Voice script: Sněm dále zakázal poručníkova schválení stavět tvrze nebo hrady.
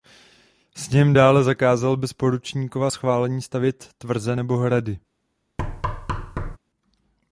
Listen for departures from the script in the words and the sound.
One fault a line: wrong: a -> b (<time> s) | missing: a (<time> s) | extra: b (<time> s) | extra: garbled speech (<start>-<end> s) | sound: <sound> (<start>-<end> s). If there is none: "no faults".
extra: bez (2.0 s)
sound: thud (5.6-6.6 s)